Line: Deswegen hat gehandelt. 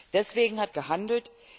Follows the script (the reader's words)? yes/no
yes